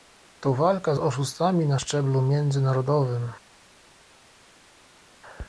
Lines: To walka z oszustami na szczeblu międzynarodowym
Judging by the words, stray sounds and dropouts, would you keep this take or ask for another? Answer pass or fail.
pass